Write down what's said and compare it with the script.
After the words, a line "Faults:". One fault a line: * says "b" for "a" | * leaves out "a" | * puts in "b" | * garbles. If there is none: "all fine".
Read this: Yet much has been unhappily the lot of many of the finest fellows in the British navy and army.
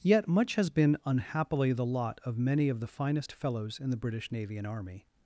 Yet much has been unhappily the lot of many of the finest fellows in the British navy and army.
Faults:
all fine